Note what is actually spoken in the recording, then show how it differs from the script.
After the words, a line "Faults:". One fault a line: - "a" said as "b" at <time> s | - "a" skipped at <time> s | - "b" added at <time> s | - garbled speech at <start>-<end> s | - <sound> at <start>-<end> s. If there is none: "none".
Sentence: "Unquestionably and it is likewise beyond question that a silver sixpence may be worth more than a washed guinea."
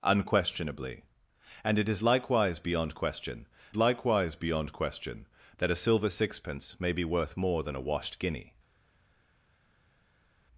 "Unquestionably and it is likewise beyond question likewise beyond question that a silver sixpence may be worth more than a washed guinea."
Faults:
- "likewise beyond question" added at 3.7 s